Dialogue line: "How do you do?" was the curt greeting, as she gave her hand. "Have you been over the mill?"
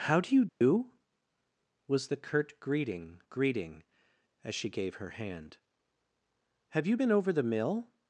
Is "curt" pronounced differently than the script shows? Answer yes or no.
no